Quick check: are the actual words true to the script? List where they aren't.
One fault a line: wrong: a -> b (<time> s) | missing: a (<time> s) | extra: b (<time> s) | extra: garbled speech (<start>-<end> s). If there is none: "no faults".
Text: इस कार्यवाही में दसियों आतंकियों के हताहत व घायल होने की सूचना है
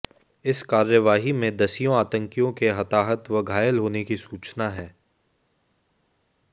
no faults